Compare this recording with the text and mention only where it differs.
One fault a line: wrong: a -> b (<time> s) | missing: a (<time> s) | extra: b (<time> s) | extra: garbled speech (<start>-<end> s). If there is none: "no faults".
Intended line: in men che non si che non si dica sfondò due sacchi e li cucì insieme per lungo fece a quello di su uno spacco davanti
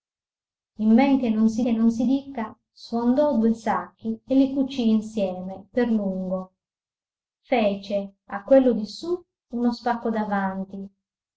no faults